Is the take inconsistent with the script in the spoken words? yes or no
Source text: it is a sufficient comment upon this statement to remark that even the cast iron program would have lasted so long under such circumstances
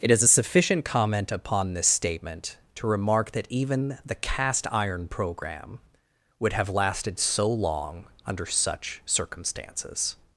no